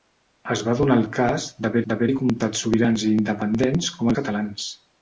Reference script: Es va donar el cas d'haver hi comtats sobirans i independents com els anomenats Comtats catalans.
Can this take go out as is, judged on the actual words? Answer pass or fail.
fail